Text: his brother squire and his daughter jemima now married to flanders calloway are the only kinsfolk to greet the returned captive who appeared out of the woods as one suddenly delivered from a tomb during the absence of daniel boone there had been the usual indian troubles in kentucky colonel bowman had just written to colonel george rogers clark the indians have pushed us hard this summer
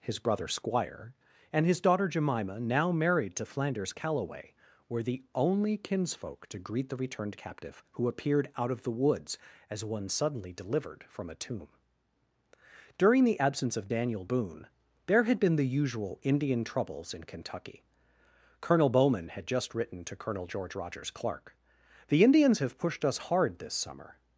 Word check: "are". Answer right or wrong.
wrong